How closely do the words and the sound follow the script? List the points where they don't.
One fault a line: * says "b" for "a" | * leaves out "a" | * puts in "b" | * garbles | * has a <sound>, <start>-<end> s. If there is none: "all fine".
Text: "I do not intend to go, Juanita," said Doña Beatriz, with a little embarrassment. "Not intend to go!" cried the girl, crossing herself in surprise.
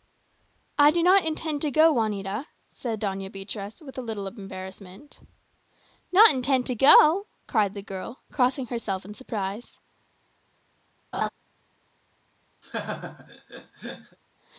* has a laugh, 11.1-11.3 s
* has a laugh, 12.6-14.2 s